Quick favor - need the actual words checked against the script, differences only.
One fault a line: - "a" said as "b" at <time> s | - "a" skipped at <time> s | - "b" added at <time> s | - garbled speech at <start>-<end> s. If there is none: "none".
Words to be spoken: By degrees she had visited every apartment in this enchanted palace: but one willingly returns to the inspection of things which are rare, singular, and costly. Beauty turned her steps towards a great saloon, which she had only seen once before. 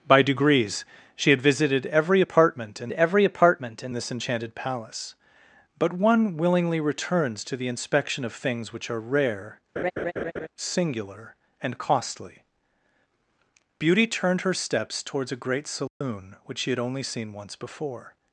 - "every apartment in" added at 2.9 s